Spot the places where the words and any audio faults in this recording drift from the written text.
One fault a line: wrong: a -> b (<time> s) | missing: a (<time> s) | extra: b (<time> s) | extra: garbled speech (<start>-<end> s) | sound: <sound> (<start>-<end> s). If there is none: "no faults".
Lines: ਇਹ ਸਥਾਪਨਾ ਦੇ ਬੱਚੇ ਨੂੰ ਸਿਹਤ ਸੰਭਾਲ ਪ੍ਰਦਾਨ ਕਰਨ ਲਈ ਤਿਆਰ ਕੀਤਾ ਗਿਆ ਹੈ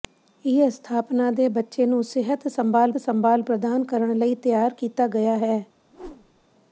extra: ਸੰਭਾਲ (3.0 s)
sound: whoosh (5.9-6.4 s)